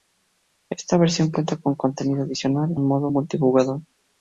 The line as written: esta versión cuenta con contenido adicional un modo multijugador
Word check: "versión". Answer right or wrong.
right